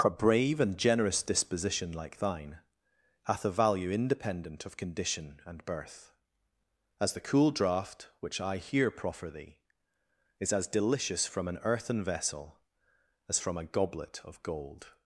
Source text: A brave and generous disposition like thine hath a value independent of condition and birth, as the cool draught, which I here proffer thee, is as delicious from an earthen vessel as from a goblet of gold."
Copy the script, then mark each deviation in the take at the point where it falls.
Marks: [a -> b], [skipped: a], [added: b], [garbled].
A brave and generous disposition like thine hath a value independent of condition and birth, as the cool draught, which I here proffer thee, is as delicious from an earthen vessel as from a goblet of gold."